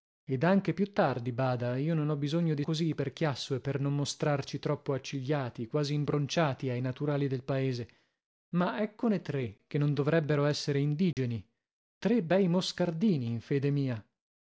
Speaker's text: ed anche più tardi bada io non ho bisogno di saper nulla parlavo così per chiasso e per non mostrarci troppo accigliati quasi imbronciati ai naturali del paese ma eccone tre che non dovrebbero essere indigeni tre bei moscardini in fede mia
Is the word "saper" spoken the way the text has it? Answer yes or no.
no